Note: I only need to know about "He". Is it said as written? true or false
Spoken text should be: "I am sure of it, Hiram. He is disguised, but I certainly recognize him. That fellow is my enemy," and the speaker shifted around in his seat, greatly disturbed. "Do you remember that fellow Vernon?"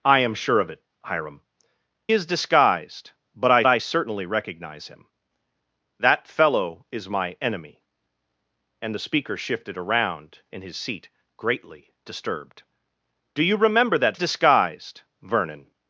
false